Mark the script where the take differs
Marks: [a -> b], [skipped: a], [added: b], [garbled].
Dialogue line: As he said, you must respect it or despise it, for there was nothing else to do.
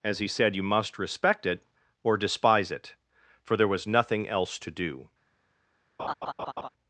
As he said, you must respect it or despise it, for there was nothing else to do.